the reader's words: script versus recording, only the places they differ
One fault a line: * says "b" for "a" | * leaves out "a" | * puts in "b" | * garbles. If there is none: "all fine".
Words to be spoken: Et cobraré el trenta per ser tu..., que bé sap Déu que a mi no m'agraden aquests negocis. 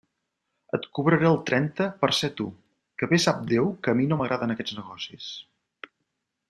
all fine